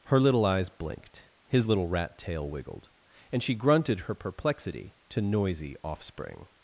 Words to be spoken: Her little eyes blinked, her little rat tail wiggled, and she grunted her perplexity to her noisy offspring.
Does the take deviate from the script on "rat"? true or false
false